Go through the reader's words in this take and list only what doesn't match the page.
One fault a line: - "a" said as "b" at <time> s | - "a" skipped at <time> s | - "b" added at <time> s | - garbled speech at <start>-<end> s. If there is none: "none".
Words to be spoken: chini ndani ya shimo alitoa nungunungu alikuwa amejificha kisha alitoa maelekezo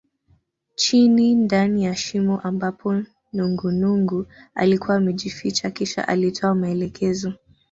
- "alitoa" said as "ambapo" at 2.4 s